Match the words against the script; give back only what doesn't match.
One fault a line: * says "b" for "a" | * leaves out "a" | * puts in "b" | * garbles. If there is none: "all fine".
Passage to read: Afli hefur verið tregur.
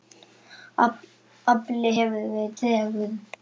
all fine